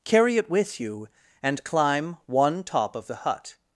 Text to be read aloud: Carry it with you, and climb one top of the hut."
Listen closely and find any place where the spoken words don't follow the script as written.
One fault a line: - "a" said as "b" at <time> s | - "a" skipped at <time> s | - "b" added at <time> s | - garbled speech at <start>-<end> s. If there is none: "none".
none